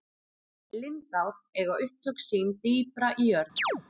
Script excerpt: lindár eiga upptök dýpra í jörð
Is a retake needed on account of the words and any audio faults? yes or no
yes